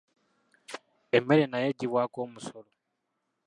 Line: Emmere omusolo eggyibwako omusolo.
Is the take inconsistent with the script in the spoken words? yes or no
yes